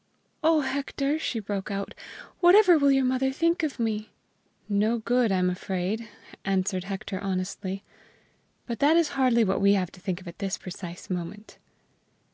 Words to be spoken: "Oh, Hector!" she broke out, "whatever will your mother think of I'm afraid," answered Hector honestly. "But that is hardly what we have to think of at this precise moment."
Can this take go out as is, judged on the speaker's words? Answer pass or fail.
fail